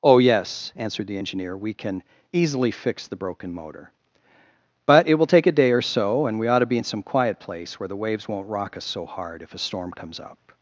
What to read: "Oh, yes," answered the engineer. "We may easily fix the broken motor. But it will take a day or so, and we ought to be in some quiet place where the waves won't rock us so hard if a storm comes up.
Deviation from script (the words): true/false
true